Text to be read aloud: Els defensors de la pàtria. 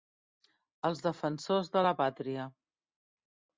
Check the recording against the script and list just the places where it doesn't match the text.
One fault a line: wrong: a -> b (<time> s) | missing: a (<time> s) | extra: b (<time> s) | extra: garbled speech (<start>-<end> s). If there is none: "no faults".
no faults